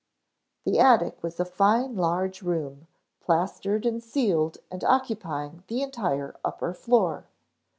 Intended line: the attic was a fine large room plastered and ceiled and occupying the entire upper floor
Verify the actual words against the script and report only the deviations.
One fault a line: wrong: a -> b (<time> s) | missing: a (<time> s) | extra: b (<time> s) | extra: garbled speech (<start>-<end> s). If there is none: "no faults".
no faults